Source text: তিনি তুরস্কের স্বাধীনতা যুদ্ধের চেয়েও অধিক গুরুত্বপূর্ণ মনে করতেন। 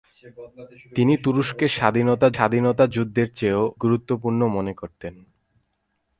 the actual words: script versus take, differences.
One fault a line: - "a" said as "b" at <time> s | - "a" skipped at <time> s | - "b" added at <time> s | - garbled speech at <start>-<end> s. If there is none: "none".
- "স্বাধীনতা" added at 2.3 s
- "অধিক" skipped at 3.6 s